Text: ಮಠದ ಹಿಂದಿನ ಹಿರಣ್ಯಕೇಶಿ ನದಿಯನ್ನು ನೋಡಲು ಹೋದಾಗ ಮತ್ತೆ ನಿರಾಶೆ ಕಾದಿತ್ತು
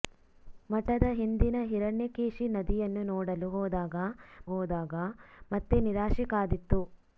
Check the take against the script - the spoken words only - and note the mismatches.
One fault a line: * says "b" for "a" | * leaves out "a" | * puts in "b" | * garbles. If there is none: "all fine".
* puts in "ಹೋದಾಗ"